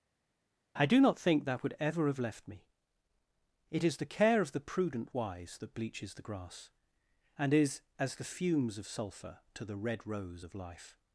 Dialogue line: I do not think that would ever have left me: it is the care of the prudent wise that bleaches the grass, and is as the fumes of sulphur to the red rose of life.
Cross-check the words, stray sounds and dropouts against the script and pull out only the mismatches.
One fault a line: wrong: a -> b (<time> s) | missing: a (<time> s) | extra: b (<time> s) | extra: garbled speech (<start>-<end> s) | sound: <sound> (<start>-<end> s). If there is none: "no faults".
no faults